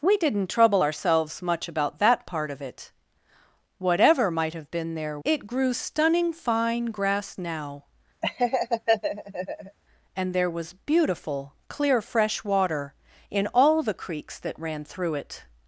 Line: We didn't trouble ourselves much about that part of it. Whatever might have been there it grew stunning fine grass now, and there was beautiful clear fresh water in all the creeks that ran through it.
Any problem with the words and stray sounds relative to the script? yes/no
yes